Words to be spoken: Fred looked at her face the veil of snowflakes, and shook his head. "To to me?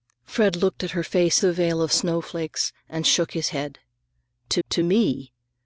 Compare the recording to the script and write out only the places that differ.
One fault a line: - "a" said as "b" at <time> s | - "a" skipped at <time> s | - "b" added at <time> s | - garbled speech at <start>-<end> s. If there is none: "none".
none